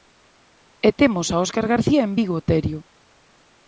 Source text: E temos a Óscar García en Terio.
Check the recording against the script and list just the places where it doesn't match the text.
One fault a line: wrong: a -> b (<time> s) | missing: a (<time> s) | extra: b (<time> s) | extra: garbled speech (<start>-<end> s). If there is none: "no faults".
extra: Vigo (2.2 s)